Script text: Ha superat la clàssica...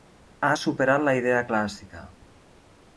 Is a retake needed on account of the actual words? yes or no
yes